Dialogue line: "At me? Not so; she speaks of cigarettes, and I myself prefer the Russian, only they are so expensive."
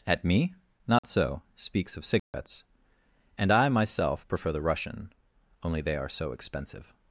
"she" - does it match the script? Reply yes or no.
no